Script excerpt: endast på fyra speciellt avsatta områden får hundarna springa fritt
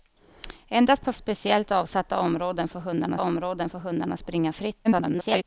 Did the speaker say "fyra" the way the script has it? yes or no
no